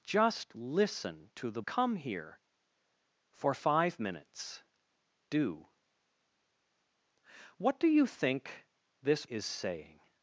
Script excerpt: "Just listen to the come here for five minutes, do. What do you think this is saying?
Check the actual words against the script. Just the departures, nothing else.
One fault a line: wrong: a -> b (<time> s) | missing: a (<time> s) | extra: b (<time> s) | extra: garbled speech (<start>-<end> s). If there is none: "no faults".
no faults